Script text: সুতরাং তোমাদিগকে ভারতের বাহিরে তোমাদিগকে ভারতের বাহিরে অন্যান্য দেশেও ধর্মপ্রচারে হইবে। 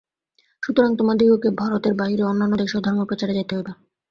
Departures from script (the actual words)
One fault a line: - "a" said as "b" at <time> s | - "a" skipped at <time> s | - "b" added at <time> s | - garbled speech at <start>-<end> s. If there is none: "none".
- "তোমাদিগকে ভারতের বাহিরে" skipped at 2.2 s
- "যাইতে" added at 3.3 s